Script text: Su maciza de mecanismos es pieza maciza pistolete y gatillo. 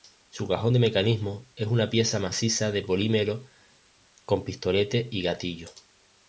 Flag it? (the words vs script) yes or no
yes